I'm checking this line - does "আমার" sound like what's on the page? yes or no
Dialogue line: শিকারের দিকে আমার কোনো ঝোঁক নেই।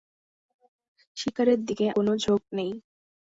no